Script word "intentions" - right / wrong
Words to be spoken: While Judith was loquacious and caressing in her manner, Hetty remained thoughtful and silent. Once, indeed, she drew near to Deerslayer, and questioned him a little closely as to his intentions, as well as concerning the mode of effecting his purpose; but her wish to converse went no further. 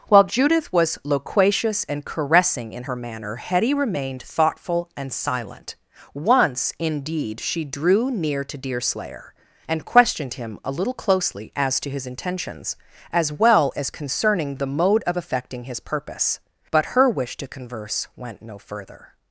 right